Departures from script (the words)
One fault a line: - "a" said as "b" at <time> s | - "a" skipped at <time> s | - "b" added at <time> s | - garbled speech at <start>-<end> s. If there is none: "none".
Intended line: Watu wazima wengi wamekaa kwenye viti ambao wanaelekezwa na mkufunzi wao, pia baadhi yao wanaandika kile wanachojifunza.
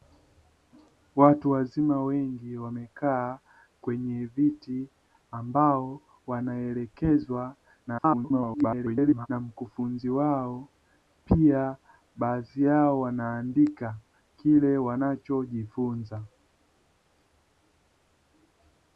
- garbled speech at 7.9-9.3 s